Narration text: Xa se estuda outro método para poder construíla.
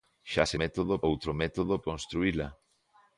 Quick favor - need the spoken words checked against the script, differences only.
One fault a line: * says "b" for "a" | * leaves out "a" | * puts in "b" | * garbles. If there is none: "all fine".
* says "método" for "estuda"
* leaves out "para poder"